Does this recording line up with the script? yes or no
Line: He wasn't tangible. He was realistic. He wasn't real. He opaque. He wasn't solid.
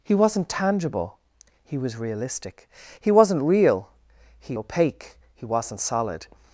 yes